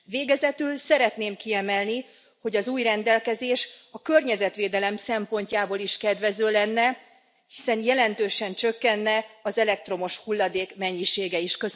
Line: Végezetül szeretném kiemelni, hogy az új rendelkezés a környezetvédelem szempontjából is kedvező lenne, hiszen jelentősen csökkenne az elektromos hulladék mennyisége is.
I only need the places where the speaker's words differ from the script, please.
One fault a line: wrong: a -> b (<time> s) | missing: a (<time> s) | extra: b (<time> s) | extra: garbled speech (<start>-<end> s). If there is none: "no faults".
no faults